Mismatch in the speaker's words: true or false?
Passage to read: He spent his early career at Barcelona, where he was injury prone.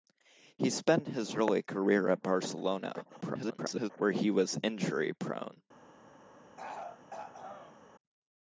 true